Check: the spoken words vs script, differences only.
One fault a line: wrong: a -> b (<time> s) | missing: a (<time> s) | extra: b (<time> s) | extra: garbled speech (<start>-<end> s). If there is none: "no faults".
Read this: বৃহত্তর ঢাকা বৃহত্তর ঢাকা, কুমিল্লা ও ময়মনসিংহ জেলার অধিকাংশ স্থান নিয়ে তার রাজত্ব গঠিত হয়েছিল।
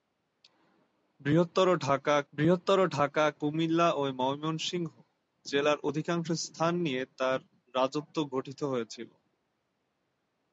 no faults